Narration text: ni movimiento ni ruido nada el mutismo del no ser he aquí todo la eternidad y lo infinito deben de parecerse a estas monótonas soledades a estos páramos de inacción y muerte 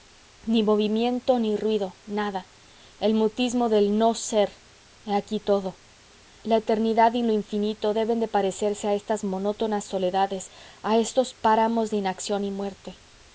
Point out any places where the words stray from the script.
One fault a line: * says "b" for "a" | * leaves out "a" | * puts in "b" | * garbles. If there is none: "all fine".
all fine